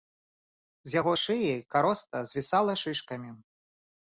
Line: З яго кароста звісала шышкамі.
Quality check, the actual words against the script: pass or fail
fail